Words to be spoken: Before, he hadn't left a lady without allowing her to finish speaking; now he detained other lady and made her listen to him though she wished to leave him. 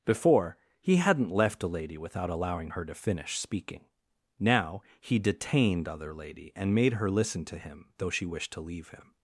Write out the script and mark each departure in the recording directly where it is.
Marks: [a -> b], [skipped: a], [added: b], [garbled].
Before, he hadn't left a lady without allowing her to finish speaking; now he detained other lady and made her listen to him though she wished to leave him.